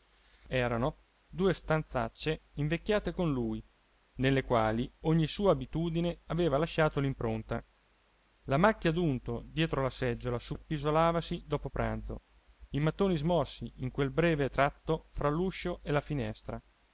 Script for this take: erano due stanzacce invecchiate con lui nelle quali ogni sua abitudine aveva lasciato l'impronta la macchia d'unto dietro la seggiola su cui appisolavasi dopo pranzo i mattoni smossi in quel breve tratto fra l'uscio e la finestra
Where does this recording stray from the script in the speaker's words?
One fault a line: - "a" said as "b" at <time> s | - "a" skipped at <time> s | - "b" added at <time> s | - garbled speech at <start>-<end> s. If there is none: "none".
- "cui" skipped at 10.6 s